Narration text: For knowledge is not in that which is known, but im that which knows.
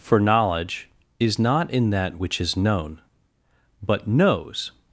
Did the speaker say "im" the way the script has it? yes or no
no